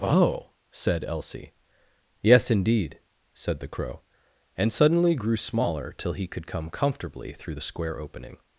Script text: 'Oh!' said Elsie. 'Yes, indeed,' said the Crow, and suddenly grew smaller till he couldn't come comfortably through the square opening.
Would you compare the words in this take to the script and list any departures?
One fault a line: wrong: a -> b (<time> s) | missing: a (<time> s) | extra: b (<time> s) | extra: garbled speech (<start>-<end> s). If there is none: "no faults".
wrong: couldn't -> could (6.3 s)